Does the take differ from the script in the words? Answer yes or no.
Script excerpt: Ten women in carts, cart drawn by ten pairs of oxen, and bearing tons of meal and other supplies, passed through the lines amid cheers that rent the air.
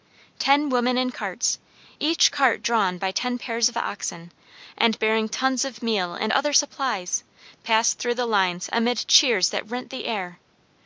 yes